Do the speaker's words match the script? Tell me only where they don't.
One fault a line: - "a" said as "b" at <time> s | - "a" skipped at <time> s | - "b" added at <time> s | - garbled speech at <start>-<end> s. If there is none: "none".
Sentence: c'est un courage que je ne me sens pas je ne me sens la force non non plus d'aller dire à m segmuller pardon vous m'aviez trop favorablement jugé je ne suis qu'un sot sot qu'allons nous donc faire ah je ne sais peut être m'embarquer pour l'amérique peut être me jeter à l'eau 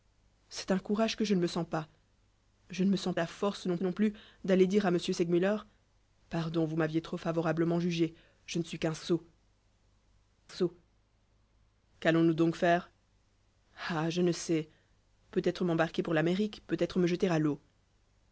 none